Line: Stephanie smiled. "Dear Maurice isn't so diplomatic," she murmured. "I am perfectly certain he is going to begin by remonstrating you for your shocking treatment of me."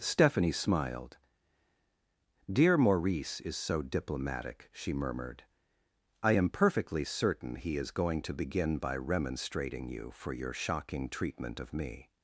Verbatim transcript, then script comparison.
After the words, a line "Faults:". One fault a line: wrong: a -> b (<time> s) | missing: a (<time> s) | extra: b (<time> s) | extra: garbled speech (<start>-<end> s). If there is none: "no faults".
Stephanie smiled. "Dear Maurice is so diplomatic," she murmured. "I am perfectly certain he is going to begin by remonstrating you for your shocking treatment of me."
Faults:
wrong: isn't -> is (3.4 s)